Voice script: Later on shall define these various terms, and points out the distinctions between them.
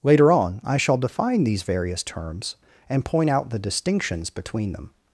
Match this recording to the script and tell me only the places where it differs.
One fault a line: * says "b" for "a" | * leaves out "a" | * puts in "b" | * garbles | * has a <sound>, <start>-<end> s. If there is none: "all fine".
* puts in "I"
* says "point" for "points"